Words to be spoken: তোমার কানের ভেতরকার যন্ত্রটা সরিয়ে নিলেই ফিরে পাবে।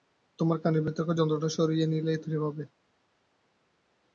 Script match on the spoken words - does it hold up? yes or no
yes